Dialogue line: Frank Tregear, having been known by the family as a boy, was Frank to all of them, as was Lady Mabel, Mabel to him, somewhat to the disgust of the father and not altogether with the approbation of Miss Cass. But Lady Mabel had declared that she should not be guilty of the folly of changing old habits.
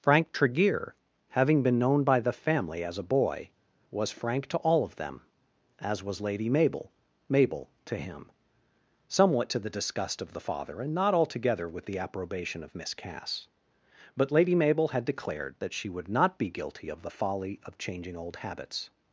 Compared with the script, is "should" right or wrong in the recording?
wrong